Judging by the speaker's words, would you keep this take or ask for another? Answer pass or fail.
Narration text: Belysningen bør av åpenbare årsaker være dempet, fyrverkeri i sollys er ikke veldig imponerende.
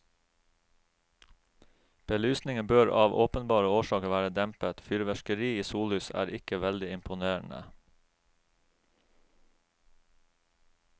pass